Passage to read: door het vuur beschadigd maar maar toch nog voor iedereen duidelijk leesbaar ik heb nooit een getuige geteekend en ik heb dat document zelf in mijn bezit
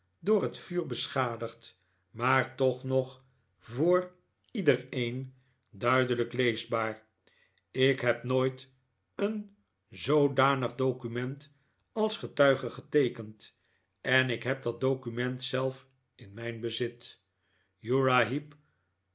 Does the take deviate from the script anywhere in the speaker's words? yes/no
yes